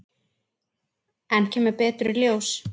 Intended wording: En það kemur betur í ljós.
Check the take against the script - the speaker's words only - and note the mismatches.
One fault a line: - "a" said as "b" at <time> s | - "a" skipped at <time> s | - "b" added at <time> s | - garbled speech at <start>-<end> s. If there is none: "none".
- "það" skipped at 1.5 s